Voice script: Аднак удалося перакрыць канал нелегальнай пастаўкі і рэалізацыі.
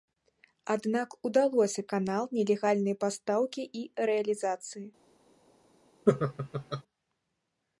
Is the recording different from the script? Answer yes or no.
yes